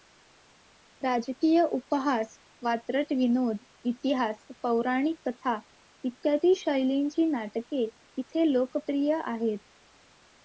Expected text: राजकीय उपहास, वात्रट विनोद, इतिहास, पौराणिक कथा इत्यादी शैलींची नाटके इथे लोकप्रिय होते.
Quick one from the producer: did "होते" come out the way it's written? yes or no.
no